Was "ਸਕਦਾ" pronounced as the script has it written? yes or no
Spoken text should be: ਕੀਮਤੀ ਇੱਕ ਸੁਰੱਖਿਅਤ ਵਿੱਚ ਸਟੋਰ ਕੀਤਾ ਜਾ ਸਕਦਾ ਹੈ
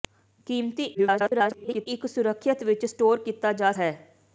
no